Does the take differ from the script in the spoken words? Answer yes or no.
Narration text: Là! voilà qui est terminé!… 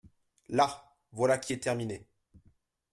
no